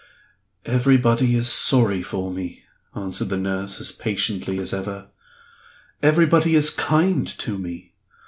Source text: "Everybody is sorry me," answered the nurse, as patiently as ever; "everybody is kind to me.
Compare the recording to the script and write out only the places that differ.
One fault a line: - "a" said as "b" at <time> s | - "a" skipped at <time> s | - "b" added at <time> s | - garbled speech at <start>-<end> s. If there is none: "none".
- "for" added at 2.0 s